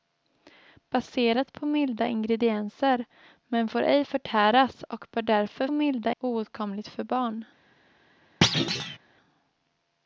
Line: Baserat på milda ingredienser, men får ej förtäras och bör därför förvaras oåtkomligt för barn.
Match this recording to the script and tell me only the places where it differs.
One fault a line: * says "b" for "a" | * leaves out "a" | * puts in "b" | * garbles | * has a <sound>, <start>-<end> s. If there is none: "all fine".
* says "milda" for "förvaras"
* has a thud, 8.4-9.0 s